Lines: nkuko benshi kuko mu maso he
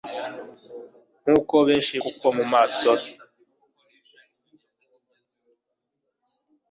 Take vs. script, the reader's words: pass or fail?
pass